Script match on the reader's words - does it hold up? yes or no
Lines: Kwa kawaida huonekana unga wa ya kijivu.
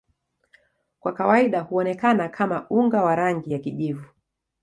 no